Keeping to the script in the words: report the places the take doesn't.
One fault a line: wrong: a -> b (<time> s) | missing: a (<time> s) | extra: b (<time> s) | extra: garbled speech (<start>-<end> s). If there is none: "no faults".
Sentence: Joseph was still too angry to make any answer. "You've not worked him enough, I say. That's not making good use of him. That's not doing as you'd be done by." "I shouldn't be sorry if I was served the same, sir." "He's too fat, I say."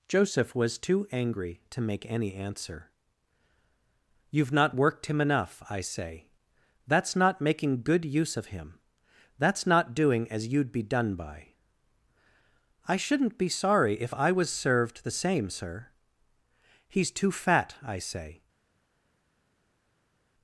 missing: still (0.8 s)